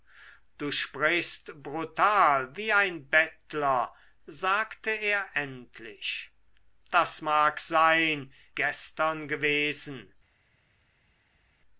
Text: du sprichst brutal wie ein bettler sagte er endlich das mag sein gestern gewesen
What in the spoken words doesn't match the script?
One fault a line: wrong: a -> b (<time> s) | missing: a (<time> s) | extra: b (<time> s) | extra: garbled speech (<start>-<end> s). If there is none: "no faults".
no faults